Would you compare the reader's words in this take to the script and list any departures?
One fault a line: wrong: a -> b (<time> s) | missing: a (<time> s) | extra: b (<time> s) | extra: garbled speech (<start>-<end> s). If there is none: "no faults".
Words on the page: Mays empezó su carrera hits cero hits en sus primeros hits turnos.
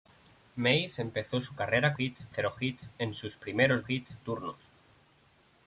no faults